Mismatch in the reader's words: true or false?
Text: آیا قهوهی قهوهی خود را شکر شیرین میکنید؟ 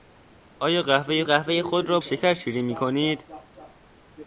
false